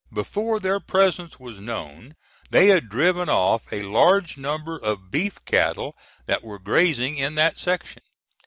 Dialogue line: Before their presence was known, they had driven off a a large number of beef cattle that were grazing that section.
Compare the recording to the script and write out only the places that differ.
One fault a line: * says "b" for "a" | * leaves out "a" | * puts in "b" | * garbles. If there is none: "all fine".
* leaves out "a"
* puts in "in"